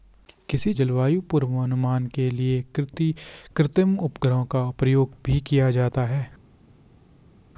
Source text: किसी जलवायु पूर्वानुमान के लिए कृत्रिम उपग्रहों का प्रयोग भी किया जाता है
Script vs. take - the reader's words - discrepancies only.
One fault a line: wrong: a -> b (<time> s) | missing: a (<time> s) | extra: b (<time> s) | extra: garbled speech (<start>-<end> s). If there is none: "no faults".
no faults